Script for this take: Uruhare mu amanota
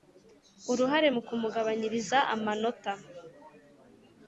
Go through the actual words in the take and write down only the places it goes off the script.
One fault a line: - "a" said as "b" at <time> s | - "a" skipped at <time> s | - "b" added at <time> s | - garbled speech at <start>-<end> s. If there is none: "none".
- "kumugabanyiriza" added at 1.3 s